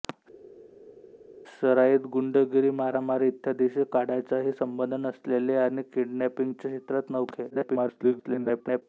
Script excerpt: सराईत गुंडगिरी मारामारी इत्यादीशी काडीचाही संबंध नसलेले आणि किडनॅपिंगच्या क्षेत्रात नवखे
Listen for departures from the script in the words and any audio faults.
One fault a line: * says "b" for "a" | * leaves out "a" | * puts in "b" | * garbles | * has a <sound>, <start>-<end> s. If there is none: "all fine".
* garbles